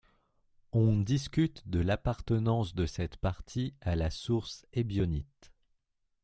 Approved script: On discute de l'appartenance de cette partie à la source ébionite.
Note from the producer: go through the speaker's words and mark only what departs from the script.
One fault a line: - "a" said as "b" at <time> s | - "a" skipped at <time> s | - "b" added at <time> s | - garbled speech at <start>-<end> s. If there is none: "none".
none